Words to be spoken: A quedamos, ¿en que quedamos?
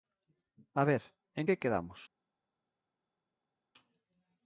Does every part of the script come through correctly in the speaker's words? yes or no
no